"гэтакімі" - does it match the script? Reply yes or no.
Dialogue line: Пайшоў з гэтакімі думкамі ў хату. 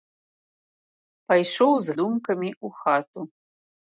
no